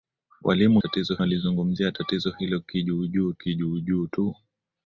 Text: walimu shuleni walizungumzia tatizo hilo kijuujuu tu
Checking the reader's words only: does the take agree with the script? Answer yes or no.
no